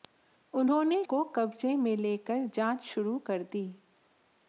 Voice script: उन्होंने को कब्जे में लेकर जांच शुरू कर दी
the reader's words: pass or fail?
pass